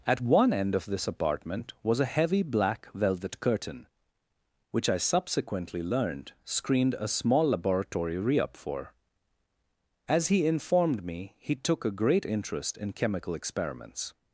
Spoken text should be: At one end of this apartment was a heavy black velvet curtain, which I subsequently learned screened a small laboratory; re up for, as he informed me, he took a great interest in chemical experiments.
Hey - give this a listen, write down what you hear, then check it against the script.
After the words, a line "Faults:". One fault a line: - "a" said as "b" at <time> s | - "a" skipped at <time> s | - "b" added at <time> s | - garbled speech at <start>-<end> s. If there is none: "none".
At one end of this apartment was a heavy black velvet curtain, which I subsequently learned screened a small laboratory; re up for, as he informed me, he took a great interest in chemical experiments.
Faults:
none